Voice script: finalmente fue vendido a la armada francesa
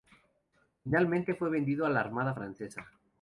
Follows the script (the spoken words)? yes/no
yes